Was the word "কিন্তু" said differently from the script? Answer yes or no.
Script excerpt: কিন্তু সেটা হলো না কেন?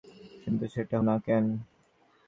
no